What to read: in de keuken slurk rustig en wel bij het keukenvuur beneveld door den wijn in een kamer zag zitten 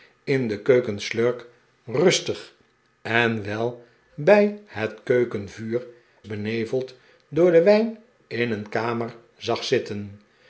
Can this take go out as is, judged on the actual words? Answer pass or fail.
pass